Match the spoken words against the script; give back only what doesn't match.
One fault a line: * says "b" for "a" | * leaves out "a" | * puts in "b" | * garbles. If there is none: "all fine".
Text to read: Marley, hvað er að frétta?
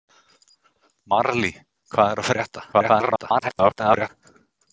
* garbles